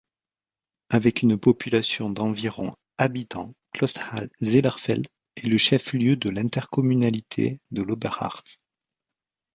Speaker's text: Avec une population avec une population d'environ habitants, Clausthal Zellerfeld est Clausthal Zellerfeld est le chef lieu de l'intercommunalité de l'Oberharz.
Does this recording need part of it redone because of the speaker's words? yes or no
yes